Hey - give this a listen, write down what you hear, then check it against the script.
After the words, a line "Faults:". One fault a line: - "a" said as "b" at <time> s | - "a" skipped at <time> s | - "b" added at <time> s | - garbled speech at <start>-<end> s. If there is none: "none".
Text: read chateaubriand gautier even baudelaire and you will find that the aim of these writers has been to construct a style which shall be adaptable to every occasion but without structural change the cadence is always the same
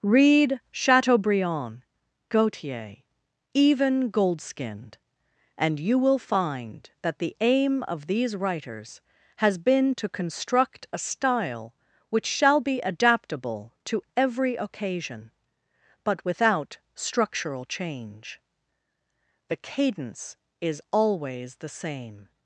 read chateaubriand gautier even goldskinned and you will find that the aim of these writers has been to construct a style which shall be adaptable to every occasion but without structural change the cadence is always the same
Faults:
- "baudelaire" said as "goldskinned" at 4.1 s